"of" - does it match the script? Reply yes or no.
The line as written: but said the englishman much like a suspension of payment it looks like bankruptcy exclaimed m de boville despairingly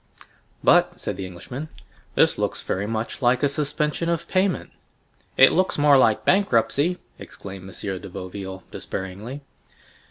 yes